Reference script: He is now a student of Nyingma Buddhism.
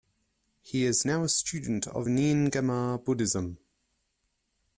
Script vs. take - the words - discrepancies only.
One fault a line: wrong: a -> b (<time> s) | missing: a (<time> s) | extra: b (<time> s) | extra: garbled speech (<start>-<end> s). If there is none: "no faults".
no faults